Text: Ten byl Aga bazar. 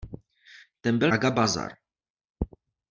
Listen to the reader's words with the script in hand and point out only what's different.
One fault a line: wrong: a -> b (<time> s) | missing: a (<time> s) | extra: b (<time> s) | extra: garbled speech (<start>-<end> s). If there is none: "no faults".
no faults